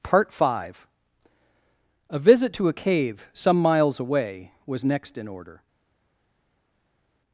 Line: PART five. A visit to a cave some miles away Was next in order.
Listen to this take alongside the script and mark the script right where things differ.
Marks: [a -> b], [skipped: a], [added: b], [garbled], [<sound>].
PART five. A visit to a cave some miles away Was next in order.